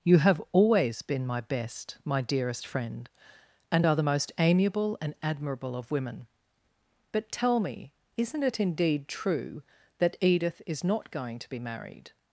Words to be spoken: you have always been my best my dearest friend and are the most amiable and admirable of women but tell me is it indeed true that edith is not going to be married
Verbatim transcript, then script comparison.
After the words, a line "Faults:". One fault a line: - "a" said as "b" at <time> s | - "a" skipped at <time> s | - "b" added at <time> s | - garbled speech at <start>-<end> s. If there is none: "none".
you have always been my best my dearest friend and are the most amiable and admirable of women but tell me isn't it indeed true that edith is not going to be married
Faults:
- "is" said as "isn't" at 8.2 s